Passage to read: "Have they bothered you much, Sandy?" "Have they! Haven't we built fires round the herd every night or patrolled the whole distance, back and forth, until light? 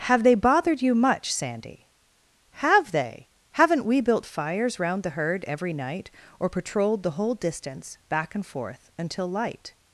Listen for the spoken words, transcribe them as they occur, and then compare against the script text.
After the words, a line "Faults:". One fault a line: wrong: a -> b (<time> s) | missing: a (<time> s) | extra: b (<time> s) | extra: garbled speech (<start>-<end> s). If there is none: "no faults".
"Have they bothered you much, Sandy?" "Have they! Haven't we built fires round the herd every night or patrolled the whole distance, back and forth, until light?
Faults:
no faults